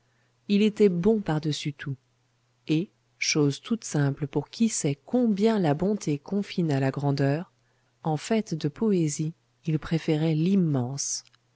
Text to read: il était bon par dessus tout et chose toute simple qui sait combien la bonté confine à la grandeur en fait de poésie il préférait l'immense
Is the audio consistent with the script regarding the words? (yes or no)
no